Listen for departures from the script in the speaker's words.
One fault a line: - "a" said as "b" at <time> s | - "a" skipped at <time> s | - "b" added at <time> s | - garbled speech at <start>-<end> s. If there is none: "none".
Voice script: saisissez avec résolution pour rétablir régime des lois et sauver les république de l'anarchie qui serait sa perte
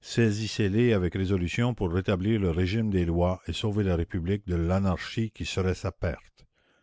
- "les" added at 0.7 s
- "le" added at 2.4 s
- "les" said as "la" at 3.8 s